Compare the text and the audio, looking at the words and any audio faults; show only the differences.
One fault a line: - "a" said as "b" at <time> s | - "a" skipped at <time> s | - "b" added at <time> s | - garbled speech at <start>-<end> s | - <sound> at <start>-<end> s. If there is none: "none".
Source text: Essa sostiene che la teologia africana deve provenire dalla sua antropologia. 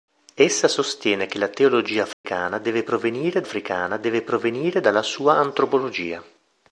- dropout at 2.1-2.2 s
- "africana deve provenire" added at 3.4 s